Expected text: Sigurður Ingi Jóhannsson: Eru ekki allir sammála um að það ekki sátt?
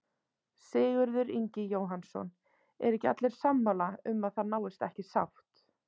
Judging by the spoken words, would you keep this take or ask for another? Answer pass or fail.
fail